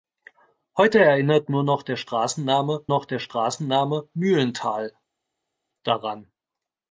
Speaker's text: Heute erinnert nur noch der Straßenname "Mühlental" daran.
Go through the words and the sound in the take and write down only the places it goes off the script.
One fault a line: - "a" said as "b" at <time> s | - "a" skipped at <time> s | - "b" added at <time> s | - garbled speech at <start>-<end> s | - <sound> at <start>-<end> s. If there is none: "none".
- "noch der Straßenname" added at 2.9 s